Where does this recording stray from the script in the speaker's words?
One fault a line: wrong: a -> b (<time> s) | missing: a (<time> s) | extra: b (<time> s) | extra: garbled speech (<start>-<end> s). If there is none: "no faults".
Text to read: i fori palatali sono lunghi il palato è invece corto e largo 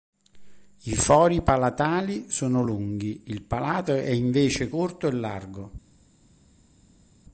no faults